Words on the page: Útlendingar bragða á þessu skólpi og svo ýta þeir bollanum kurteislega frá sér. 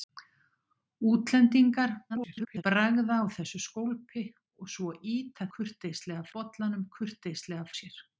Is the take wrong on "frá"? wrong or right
wrong